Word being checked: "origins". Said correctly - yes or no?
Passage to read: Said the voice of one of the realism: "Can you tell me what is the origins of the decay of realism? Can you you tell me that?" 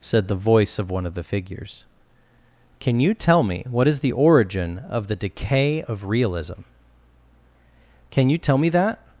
no